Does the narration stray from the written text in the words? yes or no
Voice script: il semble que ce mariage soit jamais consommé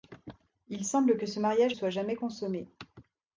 no